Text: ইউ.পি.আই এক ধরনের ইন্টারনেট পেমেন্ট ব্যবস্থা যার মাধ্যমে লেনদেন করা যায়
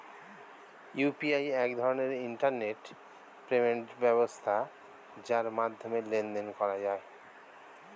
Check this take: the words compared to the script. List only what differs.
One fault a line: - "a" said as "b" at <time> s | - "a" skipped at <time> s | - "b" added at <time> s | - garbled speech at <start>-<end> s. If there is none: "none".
none